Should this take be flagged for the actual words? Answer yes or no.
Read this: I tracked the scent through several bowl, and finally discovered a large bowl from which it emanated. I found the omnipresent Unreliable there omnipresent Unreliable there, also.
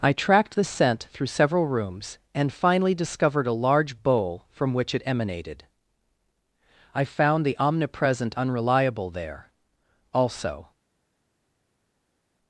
yes